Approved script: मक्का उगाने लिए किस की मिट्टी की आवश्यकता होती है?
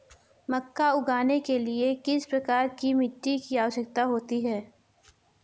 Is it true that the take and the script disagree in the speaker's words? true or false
true